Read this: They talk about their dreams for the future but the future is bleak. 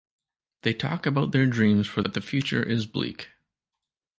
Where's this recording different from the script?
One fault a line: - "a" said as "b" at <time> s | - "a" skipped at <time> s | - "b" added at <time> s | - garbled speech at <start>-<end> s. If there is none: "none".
- "the future" skipped at 2.0 s